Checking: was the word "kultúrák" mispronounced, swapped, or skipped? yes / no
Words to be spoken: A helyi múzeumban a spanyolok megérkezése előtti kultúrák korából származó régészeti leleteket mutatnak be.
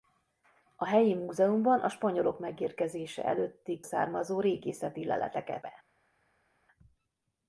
yes